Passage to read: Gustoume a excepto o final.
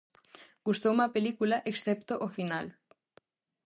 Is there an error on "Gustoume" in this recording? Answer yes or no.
no